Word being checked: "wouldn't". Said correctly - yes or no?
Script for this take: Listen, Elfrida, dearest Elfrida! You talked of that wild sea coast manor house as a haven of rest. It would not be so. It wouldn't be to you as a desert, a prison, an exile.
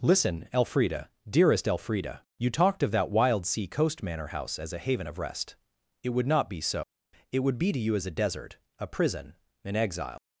no